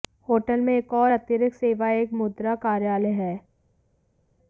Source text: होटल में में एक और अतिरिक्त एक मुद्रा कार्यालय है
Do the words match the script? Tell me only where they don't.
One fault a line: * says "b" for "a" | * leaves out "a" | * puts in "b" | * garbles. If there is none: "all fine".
* leaves out "में"
* puts in "सेवा"